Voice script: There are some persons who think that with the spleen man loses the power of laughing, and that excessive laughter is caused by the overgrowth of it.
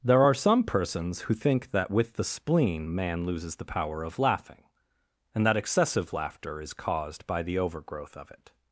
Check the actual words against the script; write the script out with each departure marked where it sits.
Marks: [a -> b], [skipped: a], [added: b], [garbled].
There are some persons who think that with the spleen man loses the power of laughing, and that excessive laughter is caused by the overgrowth of it.